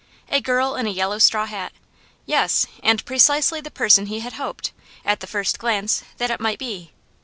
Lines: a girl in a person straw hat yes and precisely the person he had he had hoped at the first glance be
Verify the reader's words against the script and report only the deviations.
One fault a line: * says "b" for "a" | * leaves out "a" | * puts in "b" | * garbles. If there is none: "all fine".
* says "yellow" for "person"
* leaves out "he had"
* puts in "that it might"